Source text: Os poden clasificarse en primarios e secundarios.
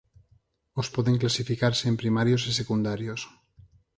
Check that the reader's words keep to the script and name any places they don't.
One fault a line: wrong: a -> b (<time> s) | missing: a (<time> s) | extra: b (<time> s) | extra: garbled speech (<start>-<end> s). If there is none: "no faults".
no faults